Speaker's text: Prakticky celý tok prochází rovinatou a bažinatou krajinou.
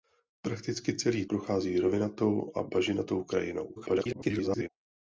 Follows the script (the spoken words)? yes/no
no